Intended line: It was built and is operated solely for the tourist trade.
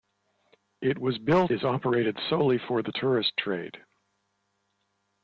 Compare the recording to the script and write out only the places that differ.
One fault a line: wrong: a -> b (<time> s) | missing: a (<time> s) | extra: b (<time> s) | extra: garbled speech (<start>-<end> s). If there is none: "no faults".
missing: and (1.5 s)